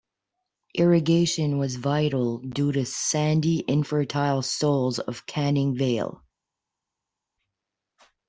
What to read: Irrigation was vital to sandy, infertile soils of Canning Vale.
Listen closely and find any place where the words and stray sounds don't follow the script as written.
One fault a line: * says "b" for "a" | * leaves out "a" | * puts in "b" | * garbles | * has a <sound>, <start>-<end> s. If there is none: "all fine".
* puts in "due"